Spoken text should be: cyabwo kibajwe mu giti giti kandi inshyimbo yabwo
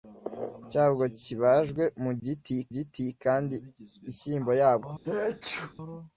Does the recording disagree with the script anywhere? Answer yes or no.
no